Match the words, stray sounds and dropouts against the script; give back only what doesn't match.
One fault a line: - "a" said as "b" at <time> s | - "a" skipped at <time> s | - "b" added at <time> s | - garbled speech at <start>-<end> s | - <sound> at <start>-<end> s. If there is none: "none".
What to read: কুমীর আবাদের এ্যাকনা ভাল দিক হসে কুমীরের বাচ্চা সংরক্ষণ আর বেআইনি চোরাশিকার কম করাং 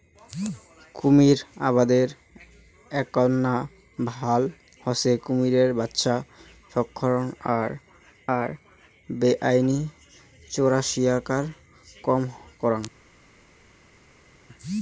- "দিক" skipped at 4.4 s
- "আর" added at 8.4 s